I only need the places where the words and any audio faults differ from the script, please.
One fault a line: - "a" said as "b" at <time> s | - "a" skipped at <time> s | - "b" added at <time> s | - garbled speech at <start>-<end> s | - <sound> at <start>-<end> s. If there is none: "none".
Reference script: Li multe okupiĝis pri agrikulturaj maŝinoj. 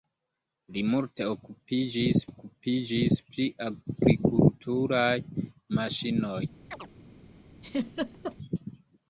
- "okupiĝis" added at 2.3 s
- chirp at 6.7-6.9 s
- laugh at 7.6-8.4 s